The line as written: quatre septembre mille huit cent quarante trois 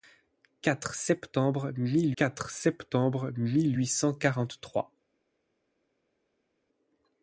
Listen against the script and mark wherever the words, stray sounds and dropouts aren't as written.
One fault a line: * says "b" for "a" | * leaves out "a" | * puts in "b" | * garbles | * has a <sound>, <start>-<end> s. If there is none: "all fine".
* puts in "quatre septembre mille"